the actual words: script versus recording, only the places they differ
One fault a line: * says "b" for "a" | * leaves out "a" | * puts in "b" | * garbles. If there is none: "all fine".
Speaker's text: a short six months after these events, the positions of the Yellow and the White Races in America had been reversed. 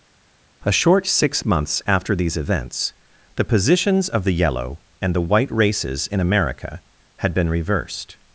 all fine